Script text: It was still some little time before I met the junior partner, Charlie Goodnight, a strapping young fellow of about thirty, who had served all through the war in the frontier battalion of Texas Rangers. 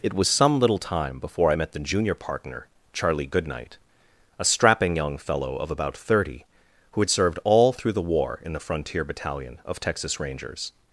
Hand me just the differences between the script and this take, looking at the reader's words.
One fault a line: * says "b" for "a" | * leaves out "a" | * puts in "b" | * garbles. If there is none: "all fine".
* leaves out "still"